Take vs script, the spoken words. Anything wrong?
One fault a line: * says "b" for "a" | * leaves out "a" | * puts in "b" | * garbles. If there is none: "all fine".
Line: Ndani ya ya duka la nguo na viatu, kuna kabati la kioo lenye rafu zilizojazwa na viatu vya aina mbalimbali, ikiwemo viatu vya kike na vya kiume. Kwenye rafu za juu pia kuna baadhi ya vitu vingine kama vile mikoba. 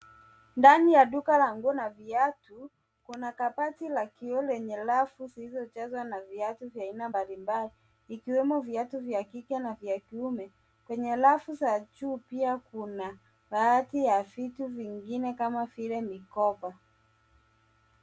* leaves out "ya"